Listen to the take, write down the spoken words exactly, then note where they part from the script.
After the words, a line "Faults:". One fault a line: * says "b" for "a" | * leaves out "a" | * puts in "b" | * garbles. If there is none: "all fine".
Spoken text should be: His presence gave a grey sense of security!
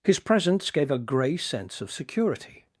His presence gave a grey sense of security!
Faults:
all fine